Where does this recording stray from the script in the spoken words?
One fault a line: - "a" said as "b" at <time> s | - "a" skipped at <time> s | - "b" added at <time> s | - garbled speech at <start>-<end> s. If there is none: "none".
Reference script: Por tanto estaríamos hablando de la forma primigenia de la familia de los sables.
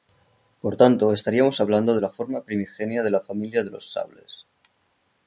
none